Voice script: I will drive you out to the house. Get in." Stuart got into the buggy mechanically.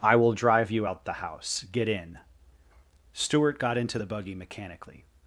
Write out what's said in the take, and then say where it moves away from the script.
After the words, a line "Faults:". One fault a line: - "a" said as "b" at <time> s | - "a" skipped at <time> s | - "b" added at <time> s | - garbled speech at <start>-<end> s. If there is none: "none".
I will drive you out the house. Get in." Stuart got into the buggy mechanically.
Faults:
- "to" skipped at 1.0 s